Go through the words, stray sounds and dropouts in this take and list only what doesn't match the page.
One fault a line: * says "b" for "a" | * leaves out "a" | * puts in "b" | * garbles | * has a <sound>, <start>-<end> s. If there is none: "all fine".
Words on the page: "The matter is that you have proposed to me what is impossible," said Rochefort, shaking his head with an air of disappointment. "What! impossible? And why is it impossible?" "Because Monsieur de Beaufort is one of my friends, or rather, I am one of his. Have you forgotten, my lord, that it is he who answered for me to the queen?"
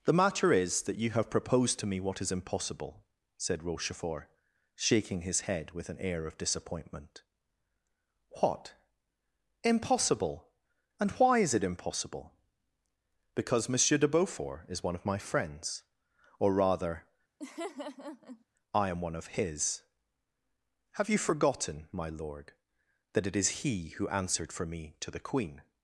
* has a laugh, 17.4-18.4 s